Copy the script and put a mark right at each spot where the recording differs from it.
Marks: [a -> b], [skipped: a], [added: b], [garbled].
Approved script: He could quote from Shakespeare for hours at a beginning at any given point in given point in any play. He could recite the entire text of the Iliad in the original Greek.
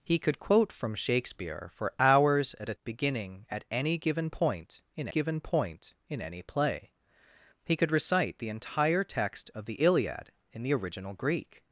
He could quote from Shakespeare for hours at a beginning at any given point in given point in any play. He could recite the entire text of the Iliad in the original Greek.